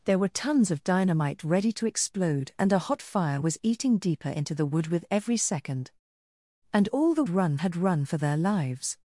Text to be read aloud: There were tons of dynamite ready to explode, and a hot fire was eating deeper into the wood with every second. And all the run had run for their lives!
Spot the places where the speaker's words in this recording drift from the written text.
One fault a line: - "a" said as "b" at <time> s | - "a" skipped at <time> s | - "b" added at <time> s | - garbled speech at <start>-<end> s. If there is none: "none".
none